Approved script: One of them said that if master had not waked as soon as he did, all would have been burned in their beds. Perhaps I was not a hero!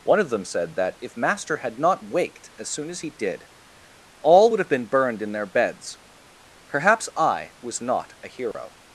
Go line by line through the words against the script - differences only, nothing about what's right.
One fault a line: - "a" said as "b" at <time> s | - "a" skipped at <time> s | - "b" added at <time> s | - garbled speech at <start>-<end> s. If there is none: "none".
none